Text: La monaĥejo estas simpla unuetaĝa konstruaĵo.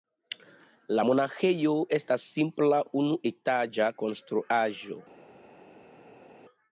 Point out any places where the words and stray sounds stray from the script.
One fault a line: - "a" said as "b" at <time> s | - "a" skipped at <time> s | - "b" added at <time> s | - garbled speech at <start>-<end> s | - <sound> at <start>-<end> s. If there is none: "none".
none